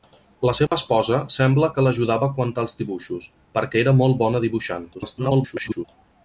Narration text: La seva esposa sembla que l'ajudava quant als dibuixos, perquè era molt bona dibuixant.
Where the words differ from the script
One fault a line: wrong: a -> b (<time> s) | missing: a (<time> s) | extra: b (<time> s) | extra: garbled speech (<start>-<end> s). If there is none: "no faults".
extra: garbled speech (4.9-5.8 s)